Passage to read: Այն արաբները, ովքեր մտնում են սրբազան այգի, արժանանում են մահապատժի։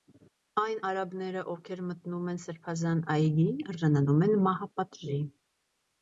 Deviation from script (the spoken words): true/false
false